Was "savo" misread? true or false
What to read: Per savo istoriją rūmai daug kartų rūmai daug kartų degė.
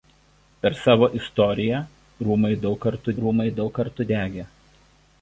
false